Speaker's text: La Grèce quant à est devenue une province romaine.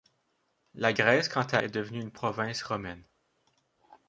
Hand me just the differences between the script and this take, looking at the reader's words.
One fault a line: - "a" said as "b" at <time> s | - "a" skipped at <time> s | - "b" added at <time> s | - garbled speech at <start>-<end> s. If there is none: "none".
none